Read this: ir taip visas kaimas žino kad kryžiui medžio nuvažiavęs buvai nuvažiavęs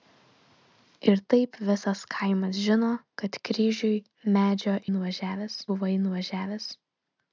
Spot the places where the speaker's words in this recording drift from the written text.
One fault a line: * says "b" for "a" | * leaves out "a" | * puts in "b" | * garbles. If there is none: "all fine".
all fine